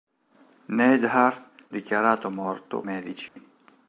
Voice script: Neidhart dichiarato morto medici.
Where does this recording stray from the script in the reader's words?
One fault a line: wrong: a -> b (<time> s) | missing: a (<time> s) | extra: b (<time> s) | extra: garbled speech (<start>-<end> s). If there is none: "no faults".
no faults